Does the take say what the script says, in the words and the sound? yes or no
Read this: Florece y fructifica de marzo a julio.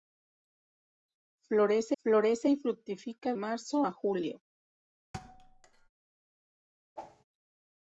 no